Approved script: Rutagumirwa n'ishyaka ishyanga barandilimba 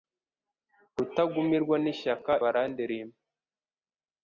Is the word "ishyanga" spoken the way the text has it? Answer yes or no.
no